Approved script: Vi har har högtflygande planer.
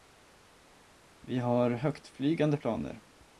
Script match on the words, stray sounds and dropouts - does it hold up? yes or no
no